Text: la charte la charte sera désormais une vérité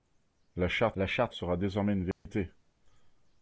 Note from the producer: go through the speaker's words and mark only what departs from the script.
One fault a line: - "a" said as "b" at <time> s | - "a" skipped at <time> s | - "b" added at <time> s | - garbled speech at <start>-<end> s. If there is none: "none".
none